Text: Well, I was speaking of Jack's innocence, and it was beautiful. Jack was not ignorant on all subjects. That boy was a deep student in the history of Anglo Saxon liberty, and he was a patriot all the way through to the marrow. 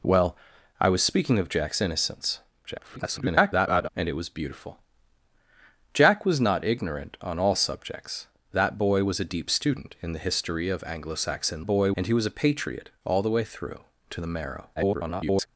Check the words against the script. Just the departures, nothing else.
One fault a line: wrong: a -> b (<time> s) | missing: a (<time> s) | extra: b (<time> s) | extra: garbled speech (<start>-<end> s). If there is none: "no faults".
extra: garbled speech (2.6-3.9 s)
wrong: liberty -> boy (11.6 s)
extra: garbled speech (14.8-15.5 s)